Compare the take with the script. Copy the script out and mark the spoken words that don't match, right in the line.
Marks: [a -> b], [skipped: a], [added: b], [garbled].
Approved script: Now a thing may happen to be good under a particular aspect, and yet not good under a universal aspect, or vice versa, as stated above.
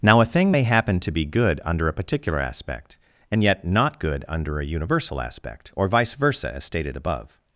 Now a thing may happen to be good under a particular aspect, and yet not good under a universal aspect, or vice versa, as stated above.